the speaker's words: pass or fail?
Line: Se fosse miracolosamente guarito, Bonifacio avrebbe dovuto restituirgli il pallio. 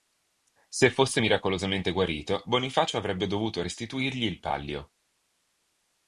pass